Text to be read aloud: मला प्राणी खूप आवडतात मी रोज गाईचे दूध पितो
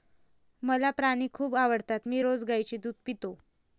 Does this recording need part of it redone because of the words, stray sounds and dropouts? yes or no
no